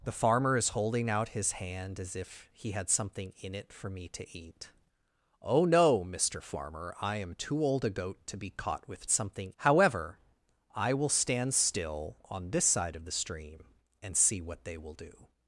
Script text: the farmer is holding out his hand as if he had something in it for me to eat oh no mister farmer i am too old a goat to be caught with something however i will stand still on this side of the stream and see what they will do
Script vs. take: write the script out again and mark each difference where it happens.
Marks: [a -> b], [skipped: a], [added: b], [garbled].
the farmer is holding out his hand as if he had something in it for me to eat oh no mister farmer i am too old a goat to be caught with something however i will stand still on this side of the stream and see what they will do